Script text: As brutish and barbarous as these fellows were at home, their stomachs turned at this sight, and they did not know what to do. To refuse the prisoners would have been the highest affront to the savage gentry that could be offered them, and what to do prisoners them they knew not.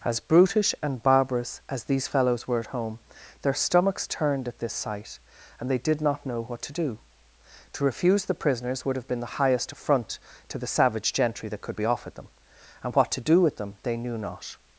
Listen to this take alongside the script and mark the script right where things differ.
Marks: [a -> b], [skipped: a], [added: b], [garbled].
As brutish and barbarous as these fellows were at home, their stomachs turned at this sight, and they did not know what to do. To refuse the prisoners would have been the highest affront to the savage gentry that could be offered them, and what to do [prisoners -> with] them they knew not.